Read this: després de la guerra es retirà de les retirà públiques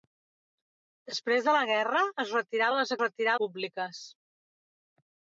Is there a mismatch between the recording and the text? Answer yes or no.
no